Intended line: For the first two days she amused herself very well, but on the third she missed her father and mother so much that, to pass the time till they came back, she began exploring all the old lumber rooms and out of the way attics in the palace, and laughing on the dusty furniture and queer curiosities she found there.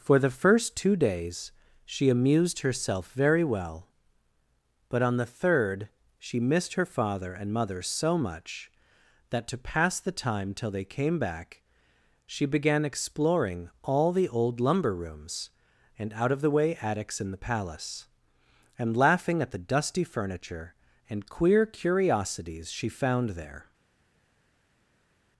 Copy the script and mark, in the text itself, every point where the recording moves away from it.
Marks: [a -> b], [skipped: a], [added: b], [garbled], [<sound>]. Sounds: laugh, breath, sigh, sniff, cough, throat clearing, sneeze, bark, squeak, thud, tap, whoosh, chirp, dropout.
For the first two days she amused herself very well, but on the third she missed her father and mother so much that, to pass the time till they came back, she began exploring all the old lumber rooms and out of the way attics in the palace, and laughing [on -> at] the dusty furniture and queer curiosities she found there.